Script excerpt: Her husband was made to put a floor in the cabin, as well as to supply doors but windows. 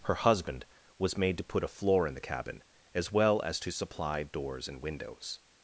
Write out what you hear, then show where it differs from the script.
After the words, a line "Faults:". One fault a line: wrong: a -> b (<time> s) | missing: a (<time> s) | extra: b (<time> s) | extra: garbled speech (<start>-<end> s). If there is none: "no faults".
Her husband was made to put a floor in the cabin, as well as to supply doors and windows.
Faults:
wrong: but -> and (4.7 s)